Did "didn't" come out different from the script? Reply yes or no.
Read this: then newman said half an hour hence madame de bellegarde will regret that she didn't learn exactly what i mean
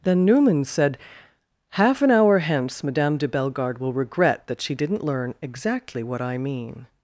no